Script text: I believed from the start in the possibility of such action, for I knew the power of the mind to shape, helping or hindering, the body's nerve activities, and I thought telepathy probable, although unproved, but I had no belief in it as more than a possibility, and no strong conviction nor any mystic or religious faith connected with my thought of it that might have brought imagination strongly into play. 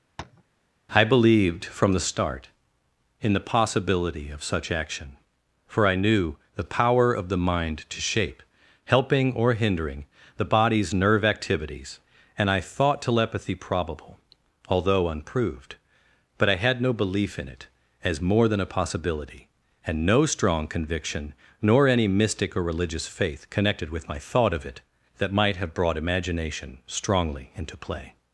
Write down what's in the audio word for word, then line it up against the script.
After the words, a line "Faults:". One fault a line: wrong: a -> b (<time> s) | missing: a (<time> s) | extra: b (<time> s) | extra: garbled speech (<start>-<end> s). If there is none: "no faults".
I believed from the start in the possibility of such action, for I knew the power of the mind to shape, helping or hindering, the body's nerve activities, and I thought telepathy probable, although unproved, but I had no belief in it as more than a possibility, and no strong conviction nor any mystic or religious faith connected with my thought of it that might have brought imagination strongly into play.
Faults:
no faults